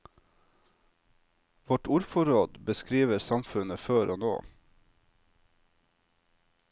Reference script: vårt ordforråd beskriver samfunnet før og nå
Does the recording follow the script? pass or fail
pass